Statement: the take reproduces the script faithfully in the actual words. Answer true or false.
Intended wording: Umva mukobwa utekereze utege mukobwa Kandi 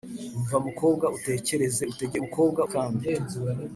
true